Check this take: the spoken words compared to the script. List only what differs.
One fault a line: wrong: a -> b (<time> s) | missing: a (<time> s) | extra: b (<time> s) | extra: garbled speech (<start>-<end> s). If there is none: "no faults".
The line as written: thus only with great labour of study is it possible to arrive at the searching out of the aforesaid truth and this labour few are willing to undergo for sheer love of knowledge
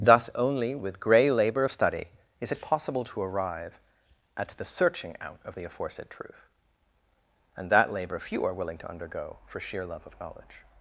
wrong: great -> grey (1.0 s)
wrong: this -> that (7.7 s)